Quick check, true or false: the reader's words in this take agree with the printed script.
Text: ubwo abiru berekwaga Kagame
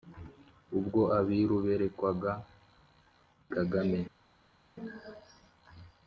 true